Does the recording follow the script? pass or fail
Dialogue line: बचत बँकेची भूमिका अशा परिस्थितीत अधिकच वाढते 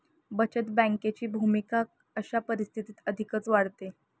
pass